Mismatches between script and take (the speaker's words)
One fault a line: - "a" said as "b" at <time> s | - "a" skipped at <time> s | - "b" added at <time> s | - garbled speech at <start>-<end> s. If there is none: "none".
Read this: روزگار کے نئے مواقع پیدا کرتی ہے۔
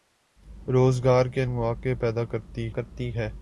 - "نئے" skipped at 1.4 s
- "کرتی" added at 2.7 s